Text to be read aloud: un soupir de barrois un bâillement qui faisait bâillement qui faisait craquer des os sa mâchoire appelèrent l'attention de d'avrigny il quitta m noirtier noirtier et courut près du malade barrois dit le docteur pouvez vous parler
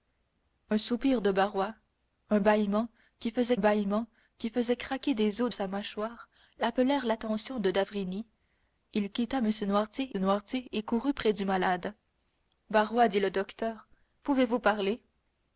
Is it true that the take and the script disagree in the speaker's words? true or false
false